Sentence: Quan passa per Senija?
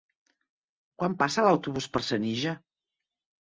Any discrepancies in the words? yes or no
yes